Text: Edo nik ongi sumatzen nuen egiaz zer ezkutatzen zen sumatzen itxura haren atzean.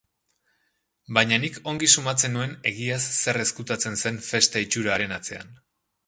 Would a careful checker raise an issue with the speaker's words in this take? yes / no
yes